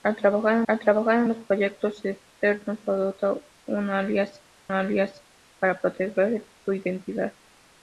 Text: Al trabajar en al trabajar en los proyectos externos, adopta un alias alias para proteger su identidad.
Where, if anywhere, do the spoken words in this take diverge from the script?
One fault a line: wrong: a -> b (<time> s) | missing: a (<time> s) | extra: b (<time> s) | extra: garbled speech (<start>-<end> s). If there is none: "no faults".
no faults